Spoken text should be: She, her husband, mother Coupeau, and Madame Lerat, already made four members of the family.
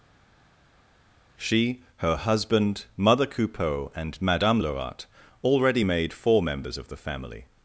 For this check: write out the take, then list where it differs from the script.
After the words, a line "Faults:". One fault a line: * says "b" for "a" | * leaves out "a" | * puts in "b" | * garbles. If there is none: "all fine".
She, her husband, mother Coupeau, and Madame Lerat, already made four members of the family.
Faults:
all fine